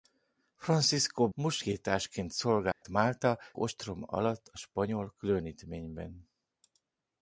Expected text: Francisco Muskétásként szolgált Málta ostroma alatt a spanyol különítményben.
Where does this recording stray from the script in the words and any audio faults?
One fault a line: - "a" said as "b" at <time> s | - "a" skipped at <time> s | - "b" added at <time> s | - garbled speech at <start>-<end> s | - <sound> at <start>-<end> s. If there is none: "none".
- dropout at 2.7-2.8 s